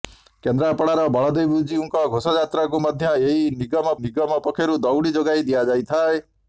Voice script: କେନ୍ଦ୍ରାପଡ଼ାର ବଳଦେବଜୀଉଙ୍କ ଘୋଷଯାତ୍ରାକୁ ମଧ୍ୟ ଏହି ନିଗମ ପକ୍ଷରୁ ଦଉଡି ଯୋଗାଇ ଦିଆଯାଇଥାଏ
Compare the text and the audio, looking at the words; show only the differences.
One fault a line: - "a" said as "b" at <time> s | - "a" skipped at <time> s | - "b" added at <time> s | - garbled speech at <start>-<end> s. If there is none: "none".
- "ନିଗମ" added at 4.0 s